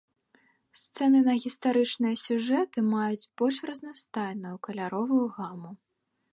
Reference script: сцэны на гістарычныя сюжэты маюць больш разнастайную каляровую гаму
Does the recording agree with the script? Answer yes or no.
yes